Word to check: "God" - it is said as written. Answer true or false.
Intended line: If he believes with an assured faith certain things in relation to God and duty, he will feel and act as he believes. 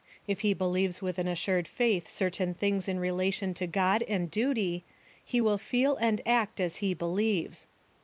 true